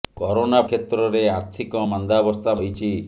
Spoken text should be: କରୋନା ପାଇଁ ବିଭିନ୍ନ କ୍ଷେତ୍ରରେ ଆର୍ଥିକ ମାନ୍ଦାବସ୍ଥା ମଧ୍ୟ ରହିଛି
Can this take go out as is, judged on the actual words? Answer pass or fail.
fail